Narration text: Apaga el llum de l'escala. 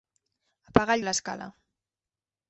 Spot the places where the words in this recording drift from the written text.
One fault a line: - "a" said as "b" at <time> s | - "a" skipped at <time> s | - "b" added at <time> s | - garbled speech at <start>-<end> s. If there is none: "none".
- "llum" skipped at 1.1 s